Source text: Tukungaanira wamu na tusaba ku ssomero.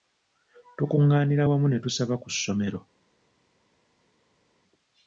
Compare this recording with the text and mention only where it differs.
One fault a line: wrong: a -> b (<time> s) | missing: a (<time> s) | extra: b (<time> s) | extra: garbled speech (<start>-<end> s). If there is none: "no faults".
wrong: na -> ne (1.7 s)